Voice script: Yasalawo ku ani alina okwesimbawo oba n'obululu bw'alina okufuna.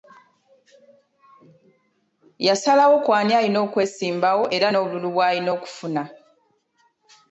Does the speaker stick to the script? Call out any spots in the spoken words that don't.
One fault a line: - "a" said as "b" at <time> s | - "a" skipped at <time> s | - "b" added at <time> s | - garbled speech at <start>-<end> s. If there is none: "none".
- "oba" said as "era" at 4.5 s